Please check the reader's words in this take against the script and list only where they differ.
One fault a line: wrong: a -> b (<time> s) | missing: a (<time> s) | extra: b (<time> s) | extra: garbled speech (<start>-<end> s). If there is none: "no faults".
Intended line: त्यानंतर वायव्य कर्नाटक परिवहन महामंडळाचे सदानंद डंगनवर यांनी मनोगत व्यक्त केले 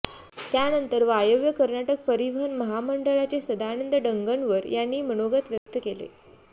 no faults